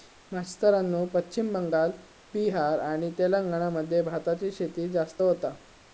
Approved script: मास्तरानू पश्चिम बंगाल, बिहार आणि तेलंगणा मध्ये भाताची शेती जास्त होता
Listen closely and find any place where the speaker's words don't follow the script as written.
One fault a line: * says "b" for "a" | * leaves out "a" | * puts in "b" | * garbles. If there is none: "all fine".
all fine